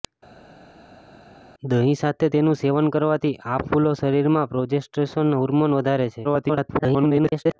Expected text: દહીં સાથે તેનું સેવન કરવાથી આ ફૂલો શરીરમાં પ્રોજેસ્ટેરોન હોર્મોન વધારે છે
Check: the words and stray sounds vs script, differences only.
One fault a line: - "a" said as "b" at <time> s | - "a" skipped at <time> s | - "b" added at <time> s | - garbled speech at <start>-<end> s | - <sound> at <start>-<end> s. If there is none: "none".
- garbled speech at 6.2-7.6 s